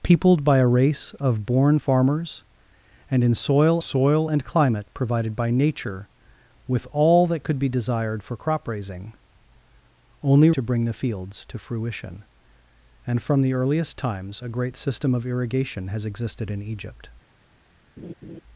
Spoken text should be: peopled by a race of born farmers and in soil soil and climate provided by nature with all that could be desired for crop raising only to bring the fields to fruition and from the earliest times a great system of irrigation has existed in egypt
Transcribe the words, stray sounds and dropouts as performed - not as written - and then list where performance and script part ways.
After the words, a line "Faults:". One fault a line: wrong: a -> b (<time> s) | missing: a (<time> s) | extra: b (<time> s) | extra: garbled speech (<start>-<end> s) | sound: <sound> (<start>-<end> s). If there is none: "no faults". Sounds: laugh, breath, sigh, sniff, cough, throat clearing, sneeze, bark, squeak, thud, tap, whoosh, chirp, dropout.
peopled by a race of born farmers and in soil soil and climate provided by nature with all that could be desired for crop raising only to bring the fields to fruition and from the earliest times a great system of irrigation has existed in egypt
Faults:
sound: laugh (18.0-18.4 s)